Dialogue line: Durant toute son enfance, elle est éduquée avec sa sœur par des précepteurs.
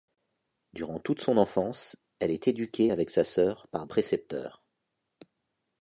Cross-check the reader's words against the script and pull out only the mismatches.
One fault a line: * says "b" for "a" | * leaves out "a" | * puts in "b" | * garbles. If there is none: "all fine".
* leaves out "des"